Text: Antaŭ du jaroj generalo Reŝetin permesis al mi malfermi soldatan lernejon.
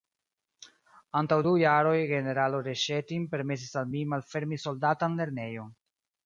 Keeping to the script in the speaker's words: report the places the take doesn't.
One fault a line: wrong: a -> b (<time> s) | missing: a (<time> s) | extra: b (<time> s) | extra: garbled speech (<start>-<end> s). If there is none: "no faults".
no faults